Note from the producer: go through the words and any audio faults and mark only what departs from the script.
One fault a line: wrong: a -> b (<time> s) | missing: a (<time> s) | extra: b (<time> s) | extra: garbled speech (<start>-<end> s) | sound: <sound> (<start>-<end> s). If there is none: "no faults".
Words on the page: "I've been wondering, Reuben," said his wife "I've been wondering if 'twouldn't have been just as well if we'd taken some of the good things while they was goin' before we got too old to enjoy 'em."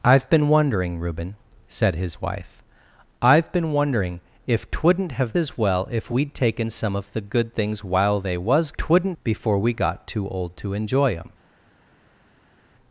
missing: been just (5.4 s)
wrong: goin -> twouldn't (8.8 s)